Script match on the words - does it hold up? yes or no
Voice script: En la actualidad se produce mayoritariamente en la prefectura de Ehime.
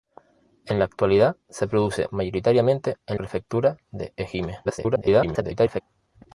no